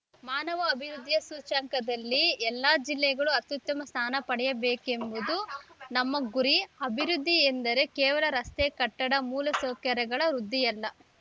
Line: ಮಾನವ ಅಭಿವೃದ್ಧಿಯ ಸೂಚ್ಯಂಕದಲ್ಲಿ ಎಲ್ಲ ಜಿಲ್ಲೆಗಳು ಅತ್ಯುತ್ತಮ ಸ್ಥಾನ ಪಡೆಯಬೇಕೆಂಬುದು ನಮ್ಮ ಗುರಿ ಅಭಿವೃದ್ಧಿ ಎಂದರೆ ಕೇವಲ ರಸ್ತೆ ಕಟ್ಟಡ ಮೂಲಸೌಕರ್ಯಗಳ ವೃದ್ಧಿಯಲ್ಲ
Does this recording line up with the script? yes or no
yes